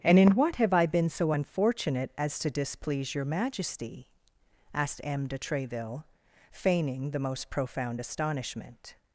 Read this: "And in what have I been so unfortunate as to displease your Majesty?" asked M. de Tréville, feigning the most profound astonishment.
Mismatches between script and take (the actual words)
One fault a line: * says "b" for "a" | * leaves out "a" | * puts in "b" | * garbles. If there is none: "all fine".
all fine